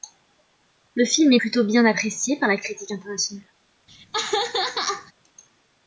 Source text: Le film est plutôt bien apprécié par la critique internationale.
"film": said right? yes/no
yes